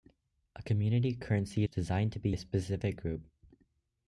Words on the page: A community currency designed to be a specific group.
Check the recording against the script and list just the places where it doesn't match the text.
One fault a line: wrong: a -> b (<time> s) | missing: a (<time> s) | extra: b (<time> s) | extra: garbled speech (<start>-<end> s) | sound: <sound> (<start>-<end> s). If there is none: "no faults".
no faults